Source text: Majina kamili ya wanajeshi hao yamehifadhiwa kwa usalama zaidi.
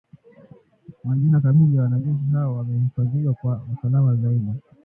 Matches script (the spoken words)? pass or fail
pass